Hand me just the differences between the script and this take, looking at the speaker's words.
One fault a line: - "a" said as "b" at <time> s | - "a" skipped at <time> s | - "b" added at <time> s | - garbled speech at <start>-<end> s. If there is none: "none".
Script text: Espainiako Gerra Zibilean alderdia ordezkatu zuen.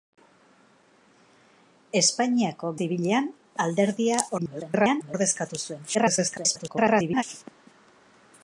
- "Gerra" skipped at 2.7 s
- garbled speech at 4.4-5.2 s
- garbled speech at 5.9-7.2 s